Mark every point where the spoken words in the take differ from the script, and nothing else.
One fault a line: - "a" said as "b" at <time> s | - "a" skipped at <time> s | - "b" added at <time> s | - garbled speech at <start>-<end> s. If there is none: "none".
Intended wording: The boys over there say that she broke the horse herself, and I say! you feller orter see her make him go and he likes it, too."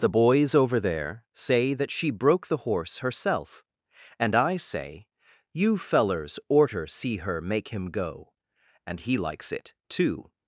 - "feller" said as "fellers" at 5.8 s